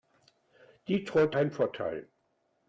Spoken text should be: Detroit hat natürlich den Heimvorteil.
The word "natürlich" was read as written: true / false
false